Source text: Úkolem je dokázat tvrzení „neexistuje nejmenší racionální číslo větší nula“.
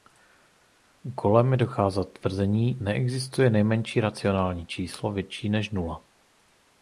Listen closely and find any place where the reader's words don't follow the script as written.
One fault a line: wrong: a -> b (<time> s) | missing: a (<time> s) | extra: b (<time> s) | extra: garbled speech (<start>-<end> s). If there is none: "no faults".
extra: než (5.5 s)